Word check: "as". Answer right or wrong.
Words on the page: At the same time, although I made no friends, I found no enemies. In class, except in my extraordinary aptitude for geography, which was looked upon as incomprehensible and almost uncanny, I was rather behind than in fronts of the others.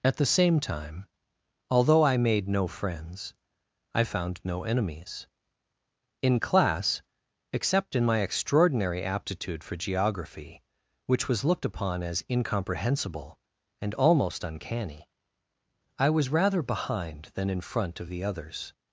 right